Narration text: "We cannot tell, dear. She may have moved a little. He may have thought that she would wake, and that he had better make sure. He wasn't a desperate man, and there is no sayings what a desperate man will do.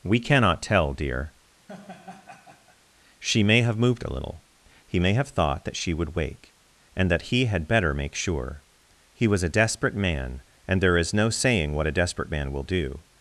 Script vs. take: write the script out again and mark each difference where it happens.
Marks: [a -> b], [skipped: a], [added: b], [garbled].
"We cannot tell, dear. She may have moved a little. He may have thought that she would wake, and that he had better make sure. He [wasn't -> was] a desperate man, and there is no [sayings -> saying] what a desperate man will do.